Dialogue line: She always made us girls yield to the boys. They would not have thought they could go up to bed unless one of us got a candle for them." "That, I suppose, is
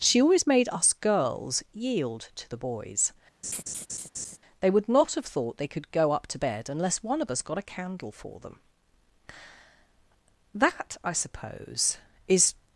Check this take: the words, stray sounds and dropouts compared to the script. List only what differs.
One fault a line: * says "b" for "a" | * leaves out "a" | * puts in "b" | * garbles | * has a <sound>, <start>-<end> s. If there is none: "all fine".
* has a laugh, 3.4-4.4 s